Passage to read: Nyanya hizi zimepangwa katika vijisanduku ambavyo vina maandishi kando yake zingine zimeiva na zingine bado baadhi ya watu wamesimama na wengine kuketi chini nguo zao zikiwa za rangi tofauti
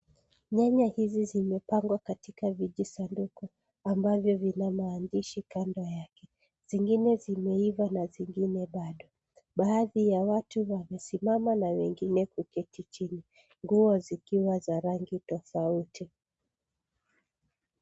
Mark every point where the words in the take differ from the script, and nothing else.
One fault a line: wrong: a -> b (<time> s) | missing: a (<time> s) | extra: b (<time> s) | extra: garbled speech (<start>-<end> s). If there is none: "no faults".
missing: zao (14.0 s)